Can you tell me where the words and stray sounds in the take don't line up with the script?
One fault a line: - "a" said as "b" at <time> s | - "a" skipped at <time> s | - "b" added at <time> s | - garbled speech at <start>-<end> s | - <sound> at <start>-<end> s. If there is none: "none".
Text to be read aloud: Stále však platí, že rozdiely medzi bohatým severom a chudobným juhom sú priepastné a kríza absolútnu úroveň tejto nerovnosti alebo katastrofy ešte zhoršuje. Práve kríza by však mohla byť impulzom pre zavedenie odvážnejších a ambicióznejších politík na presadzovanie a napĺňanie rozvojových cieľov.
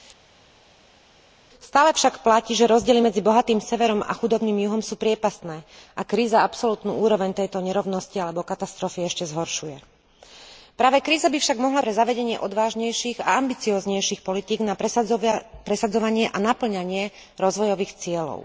- "byť impulzom" skipped at 11.8 s